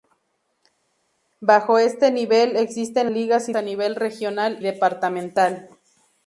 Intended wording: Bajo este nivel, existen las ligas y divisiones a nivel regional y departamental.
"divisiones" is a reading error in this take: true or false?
true